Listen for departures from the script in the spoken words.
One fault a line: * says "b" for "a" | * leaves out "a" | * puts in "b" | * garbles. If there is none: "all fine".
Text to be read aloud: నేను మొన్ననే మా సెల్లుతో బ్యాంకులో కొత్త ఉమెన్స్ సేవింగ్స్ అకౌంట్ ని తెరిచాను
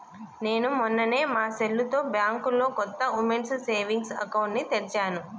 all fine